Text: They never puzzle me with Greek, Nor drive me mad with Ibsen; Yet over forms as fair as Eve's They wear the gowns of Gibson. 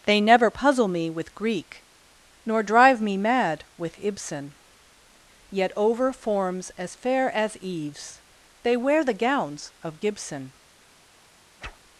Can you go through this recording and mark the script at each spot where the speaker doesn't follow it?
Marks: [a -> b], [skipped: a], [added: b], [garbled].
They never puzzle me with Greek, Nor drive me mad with Ibsen; Yet over forms as fair as Eve's They wear the gowns of Gibson.